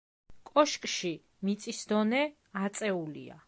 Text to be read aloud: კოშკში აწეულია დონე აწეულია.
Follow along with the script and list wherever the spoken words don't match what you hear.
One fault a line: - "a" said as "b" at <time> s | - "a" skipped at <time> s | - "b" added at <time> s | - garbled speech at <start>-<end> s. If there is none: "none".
- "აწეულია" said as "მიწის" at 1.5 s